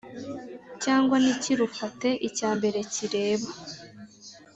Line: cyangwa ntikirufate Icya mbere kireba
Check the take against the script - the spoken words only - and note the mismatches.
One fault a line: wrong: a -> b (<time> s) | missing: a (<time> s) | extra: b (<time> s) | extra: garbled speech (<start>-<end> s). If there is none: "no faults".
no faults